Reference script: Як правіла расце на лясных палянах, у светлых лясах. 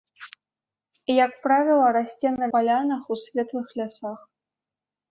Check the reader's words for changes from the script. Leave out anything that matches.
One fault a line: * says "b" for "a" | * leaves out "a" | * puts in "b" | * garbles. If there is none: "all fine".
* leaves out "лясных"